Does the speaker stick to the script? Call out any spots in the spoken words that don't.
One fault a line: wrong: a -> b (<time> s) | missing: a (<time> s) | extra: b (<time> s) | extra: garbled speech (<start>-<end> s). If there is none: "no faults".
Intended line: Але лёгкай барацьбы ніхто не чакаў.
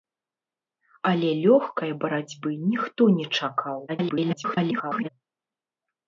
extra: garbled speech (3.9-5.1 s)